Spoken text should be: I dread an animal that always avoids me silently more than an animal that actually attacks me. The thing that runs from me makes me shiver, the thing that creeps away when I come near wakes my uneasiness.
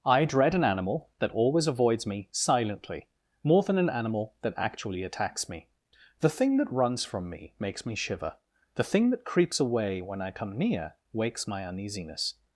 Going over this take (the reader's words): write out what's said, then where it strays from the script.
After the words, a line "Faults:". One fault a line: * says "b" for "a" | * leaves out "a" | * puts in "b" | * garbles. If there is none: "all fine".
I dread an animal that always avoids me silently more than an animal that actually attacks me. The thing that runs from me makes me shiver, the thing that creeps away when I come near wakes my uneasiness.
Faults:
all fine